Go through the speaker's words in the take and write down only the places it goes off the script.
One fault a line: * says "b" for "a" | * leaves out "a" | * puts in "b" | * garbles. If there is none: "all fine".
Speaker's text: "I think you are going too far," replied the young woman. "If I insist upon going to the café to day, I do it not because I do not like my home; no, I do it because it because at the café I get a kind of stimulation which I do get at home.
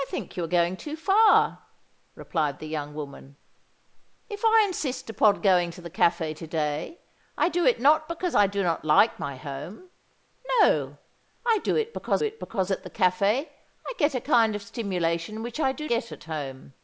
all fine